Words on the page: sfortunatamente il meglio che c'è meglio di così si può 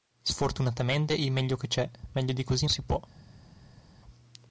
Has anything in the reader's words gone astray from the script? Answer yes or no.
no